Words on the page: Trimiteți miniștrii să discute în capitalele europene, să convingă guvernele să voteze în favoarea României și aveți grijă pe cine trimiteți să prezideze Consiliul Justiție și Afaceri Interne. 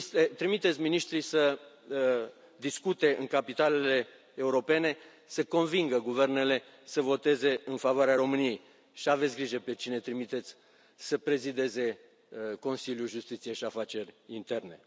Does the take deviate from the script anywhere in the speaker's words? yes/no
no